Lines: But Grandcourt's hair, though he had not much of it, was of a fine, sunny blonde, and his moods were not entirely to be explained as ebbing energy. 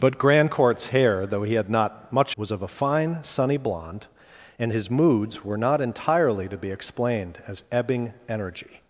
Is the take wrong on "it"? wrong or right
wrong